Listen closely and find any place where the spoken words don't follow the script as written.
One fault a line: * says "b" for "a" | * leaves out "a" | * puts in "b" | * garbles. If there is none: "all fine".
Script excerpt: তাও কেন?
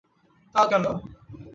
all fine